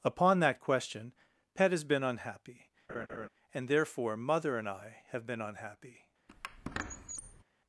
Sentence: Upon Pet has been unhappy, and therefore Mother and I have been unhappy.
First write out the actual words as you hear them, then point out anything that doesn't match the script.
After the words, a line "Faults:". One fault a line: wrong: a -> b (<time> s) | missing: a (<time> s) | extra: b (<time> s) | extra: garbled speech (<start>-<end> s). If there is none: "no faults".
Upon that question, Pet has been unhappy, and therefore Mother and I have been unhappy.
Faults:
extra: that question (0.4 s)